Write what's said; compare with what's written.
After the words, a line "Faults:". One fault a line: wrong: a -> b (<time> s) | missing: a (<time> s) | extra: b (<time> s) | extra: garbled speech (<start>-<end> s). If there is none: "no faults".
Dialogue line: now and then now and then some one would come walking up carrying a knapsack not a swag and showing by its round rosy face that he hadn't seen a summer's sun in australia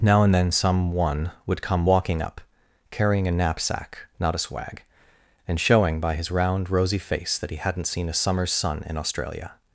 now and then some one would come walking up carrying a knapsack not a swag and showing by his round rosy face that he hadn't seen a summer's sun in australia
Faults:
missing: now and then (0.5 s)
wrong: its -> his (6.1 s)